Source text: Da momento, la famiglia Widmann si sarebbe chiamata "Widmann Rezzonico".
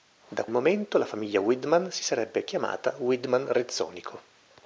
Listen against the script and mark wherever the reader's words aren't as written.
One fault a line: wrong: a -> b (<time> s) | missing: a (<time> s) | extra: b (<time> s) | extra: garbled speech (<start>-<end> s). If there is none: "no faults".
no faults